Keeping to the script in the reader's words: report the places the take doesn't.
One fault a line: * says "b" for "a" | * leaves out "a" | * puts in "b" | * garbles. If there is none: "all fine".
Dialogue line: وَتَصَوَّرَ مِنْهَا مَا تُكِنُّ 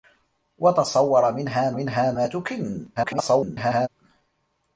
* puts in "مِنْهَا"
* garbles